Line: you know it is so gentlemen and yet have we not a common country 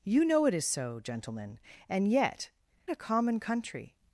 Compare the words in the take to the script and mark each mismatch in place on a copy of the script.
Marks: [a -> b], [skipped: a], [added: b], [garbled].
you know it is so gentlemen and yet [skipped: have we not] a common country